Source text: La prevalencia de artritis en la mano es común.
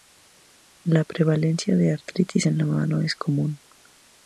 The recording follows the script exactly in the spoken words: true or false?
true